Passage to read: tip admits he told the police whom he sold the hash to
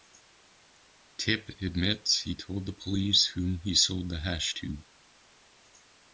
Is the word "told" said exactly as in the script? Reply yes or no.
yes